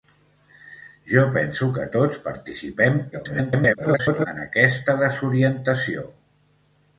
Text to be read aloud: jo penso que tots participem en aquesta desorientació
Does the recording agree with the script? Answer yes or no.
no